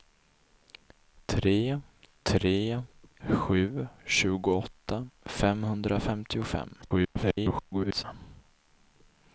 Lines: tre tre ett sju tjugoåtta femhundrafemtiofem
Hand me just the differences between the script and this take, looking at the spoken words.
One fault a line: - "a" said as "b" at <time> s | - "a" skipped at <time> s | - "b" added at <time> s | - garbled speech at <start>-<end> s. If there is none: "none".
- "ett" skipped at 2.8 s
- garbled speech at 6.8-8.0 s